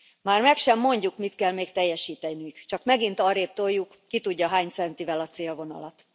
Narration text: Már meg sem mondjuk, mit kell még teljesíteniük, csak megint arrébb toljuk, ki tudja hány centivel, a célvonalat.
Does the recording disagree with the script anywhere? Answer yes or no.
no